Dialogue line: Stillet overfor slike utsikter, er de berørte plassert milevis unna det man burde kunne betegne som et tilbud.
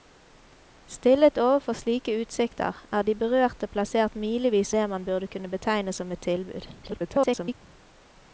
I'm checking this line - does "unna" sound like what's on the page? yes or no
no